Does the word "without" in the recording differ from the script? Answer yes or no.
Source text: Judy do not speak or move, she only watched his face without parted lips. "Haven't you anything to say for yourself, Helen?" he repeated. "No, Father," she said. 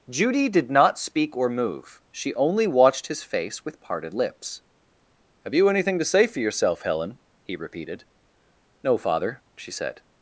yes